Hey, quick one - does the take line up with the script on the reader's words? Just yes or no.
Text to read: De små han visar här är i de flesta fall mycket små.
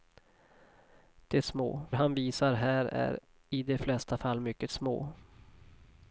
yes